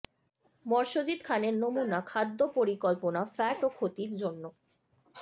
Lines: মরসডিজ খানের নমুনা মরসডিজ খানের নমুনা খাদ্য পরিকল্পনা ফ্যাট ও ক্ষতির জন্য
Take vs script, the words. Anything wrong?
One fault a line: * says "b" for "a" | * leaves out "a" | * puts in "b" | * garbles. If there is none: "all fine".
* leaves out "মরসডিজ খানের নমুনা"